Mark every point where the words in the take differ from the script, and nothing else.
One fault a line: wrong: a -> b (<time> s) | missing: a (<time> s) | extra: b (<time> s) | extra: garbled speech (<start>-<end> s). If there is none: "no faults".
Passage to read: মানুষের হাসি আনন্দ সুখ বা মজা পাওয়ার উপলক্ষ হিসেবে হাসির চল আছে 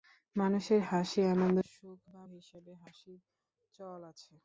missing: মজা পাওয়ার উপলক্ষ (2.2 s)